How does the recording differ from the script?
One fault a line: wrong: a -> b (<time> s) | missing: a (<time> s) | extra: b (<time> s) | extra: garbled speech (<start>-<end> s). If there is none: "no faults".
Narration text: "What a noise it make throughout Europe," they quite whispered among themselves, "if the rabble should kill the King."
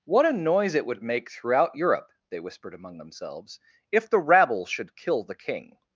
extra: would (0.9 s)
missing: quite (2.4 s)